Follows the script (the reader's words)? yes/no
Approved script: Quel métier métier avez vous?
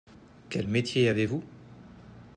no